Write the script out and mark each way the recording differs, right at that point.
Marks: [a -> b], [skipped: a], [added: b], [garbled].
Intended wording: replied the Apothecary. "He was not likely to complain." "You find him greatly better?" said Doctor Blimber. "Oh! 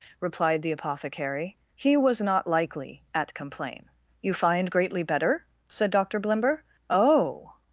replied the Apothecary. "He was not likely [to -> at] complain." "You find [skipped: him] greatly better?" said Doctor Blimber. "Oh!